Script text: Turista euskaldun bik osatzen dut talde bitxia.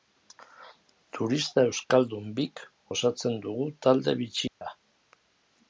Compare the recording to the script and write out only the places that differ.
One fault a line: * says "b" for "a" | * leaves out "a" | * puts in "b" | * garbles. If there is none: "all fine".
* says "dugu" for "dut"